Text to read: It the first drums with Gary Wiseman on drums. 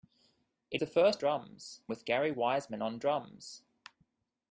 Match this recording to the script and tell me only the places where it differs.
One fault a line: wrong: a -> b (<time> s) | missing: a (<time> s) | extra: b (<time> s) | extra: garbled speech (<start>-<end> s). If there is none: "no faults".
no faults